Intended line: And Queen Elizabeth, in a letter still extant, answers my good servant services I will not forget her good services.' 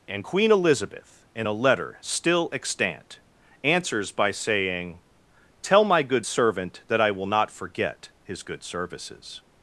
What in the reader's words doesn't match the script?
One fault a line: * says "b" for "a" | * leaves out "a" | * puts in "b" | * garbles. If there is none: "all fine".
* puts in "by saying Tell"
* says "that" for "services"
* says "his" for "her"